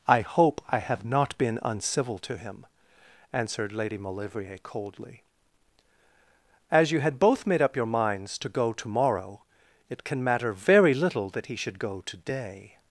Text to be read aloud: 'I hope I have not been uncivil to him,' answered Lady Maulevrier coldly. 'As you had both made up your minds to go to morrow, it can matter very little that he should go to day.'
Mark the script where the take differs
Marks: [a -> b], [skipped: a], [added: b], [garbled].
'I hope I have not been uncivil to him,' answered Lady Maulevrier coldly. 'As you had both made up your minds to go to morrow, it can matter very little that he should go to day.'